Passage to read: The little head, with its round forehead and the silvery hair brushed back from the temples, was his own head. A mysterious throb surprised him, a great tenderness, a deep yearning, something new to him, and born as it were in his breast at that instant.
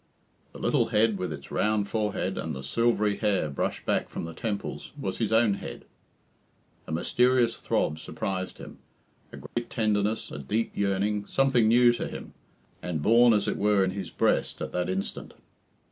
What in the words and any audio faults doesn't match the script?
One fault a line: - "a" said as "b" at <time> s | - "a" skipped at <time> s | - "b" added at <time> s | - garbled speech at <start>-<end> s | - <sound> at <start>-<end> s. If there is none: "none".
- dropout at 9.5-9.6 s